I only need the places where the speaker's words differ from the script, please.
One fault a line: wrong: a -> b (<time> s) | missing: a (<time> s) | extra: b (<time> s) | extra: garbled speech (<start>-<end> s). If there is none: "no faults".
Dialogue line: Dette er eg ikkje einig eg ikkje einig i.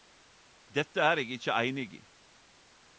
missing: eg ikkje einig (1.9 s)